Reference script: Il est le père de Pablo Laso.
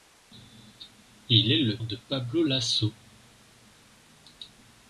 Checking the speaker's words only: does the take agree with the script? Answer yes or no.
no